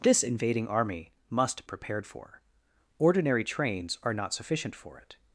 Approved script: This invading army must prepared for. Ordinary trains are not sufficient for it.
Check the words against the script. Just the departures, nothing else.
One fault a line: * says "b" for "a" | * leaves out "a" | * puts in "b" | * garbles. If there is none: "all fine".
all fine